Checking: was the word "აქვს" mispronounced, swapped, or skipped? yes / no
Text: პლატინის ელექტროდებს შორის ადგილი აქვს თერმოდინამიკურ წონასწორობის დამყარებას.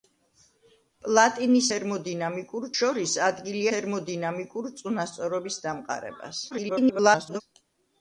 yes